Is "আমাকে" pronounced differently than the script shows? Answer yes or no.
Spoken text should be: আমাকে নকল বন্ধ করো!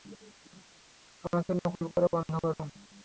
no